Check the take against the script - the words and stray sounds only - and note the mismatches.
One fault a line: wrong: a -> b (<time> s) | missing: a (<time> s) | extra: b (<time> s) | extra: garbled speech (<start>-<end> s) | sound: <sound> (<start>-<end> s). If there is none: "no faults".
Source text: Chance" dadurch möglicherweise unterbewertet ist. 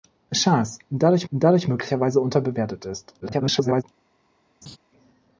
extra: dadurch (1.3 s)
extra: garbled speech (3.2-3.8 s)
sound: laugh (4.6-4.8 s)